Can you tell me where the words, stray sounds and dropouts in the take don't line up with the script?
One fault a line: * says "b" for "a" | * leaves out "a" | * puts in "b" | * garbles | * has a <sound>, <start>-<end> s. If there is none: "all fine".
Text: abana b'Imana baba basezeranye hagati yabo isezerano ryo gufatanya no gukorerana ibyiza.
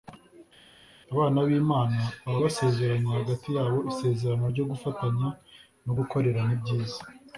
all fine